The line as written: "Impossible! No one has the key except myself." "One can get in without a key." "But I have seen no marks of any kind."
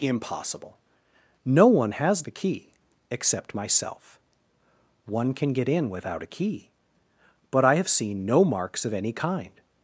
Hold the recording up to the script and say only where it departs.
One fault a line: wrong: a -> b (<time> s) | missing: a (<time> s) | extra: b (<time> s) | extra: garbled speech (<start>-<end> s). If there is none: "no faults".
no faults